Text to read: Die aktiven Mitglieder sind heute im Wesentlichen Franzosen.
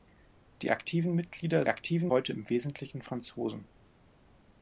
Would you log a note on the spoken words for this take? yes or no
yes